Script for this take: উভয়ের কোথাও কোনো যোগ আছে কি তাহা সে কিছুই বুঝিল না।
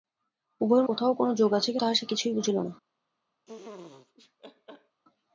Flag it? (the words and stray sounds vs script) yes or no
yes